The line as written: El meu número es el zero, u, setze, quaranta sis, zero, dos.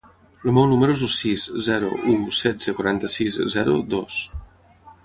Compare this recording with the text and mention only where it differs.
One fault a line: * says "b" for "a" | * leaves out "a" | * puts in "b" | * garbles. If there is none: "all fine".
* puts in "sis"